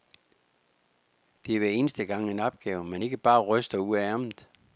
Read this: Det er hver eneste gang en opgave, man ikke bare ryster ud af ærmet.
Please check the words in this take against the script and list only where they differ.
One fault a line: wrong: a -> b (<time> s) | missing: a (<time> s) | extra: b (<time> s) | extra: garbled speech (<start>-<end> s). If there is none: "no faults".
no faults